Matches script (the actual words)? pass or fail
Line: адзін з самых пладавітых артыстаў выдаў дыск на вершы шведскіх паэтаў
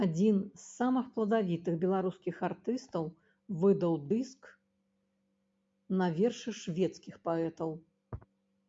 fail